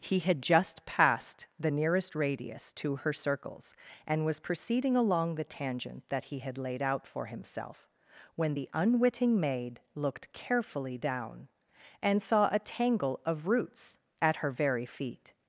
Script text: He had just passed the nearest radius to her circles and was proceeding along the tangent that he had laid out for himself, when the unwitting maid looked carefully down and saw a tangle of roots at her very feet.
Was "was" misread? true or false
false